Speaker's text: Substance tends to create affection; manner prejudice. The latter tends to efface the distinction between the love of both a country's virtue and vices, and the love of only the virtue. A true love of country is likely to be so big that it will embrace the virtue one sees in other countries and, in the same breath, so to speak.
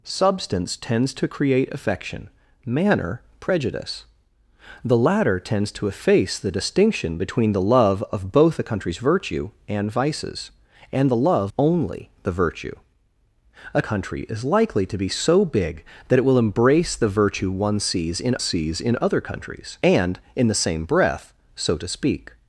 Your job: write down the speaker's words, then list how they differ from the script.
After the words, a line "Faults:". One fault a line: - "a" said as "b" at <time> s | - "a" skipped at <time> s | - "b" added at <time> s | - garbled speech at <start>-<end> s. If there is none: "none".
Substance tends to create affection; manner prejudice. The latter tends to efface the distinction between the love of both a country's virtue and vices, and the love only the virtue. A country is likely to be so big that it will embrace the virtue one sees in sees in other countries and, in the same breath, so to speak.
Faults:
- "of" skipped at 11.5 s
- "true love of" skipped at 13.8 s
- "sees in" added at 18.4 s